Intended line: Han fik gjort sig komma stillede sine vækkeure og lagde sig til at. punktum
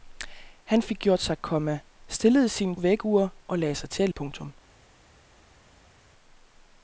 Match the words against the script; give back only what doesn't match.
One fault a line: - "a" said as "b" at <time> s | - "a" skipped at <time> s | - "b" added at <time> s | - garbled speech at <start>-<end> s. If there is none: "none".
none